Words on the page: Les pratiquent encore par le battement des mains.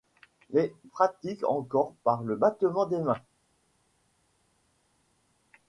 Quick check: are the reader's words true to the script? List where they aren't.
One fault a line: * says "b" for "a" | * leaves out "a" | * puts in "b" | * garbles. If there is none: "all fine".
all fine